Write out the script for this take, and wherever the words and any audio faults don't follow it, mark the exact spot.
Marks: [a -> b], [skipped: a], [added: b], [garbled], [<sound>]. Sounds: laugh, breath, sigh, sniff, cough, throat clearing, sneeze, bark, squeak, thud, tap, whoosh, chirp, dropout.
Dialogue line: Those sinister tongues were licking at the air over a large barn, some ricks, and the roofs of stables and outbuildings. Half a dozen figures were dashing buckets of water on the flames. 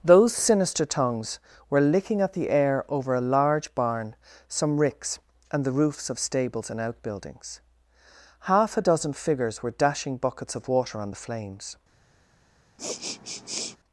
Those sinister tongues were licking at the air over a large barn, some ricks, and the roofs of stables and outbuildings. Half a dozen figures were dashing buckets of water on the flames. [sniff]